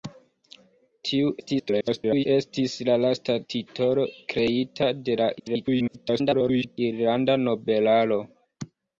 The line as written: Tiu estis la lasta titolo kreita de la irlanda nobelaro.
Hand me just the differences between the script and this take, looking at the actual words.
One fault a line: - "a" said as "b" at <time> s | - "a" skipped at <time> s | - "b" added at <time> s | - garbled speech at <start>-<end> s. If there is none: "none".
- garbled speech at 1.4-2.3 s
- garbled speech at 5.4-6.8 s